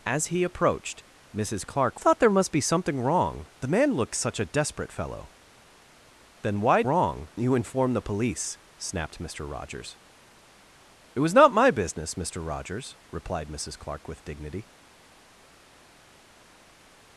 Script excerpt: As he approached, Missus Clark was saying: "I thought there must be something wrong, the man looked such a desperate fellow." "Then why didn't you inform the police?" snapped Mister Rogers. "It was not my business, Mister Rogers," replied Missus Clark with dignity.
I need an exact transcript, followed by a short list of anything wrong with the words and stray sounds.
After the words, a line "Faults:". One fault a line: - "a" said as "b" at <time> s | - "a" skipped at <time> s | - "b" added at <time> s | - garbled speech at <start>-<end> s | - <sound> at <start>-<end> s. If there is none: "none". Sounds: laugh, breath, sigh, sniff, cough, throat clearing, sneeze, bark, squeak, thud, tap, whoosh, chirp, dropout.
As he approached, Missus Clark thought there must be something wrong, the man looked such a desperate fellow." "Then why wrong you inform the police?" snapped Mister Rogers. "It was not my business, Mister Rogers," replied Missus Clark with dignity.
Faults:
- "was saying I" skipped at 2.0 s
- "didn't" said as "wrong" at 6.8 s